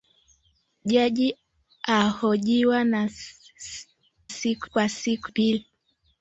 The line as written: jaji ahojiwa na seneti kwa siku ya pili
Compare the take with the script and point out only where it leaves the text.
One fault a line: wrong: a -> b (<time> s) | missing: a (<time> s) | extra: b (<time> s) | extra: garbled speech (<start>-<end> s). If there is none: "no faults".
wrong: seneti -> siku (4.3 s)
missing: ya (5.3 s)